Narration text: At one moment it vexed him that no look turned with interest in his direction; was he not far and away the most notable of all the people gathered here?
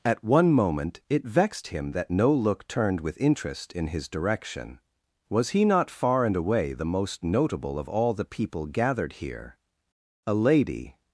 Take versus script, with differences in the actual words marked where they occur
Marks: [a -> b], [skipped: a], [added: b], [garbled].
At one moment it vexed him that no look turned with interest in his direction; was he not far and away the most notable of all the people gathered here? [added: A lady]